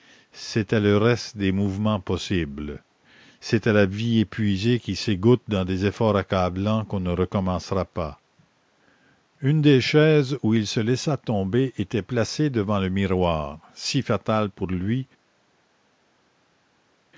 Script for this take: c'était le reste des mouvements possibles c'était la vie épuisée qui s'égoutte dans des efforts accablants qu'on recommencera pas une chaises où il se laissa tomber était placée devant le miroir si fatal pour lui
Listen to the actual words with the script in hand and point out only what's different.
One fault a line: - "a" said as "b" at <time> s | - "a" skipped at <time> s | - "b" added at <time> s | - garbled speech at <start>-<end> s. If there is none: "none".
- "ne" added at 7.0 s
- "des" added at 9.6 s